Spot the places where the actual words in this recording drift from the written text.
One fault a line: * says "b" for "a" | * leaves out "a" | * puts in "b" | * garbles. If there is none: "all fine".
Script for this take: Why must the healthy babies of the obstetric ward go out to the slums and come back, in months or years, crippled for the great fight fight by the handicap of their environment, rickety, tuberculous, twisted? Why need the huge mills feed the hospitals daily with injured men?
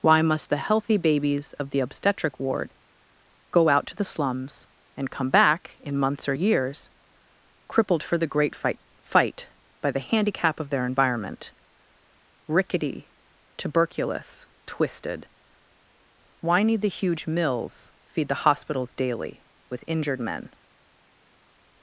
all fine